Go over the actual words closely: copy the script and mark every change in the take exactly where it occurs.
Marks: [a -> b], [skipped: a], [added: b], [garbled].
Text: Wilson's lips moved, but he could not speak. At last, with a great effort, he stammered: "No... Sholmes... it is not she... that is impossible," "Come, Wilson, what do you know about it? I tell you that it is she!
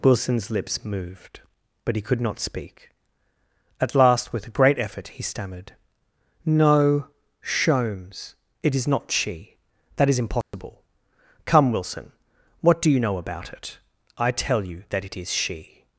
Wilson's lips moved, but he could not speak. At last, with a great effort, he stammered: "No... Sholmes... it is not she... that is impossible," "Come, Wilson, what do you know about it? I tell you that it is she!